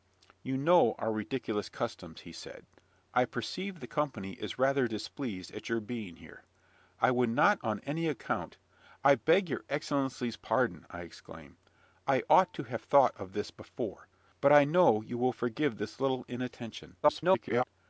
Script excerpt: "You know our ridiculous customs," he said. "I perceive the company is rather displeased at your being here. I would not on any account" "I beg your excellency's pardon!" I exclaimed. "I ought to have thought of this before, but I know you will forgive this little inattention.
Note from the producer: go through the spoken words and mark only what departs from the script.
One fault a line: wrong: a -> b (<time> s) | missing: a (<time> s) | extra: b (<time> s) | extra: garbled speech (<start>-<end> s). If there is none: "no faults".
extra: garbled speech (17.0-17.6 s)